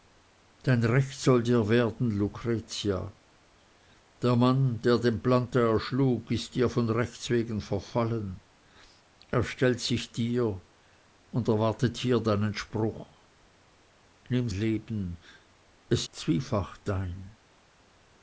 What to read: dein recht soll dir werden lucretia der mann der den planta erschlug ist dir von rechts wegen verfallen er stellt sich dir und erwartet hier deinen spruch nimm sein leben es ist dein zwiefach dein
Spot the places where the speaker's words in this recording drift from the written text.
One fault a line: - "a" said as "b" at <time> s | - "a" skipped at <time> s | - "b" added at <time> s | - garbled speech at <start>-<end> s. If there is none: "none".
- "sein" skipped at 14.5 s
- "ist dein" skipped at 16.1 s